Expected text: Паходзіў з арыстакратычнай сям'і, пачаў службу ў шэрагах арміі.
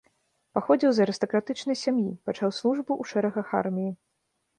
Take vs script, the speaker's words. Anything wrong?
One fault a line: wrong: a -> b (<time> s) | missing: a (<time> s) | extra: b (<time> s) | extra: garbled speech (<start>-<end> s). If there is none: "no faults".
no faults